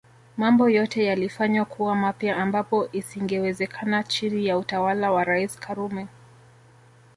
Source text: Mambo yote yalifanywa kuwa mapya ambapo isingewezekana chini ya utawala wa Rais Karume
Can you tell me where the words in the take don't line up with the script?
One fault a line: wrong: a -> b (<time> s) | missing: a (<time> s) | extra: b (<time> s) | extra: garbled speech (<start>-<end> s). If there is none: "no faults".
no faults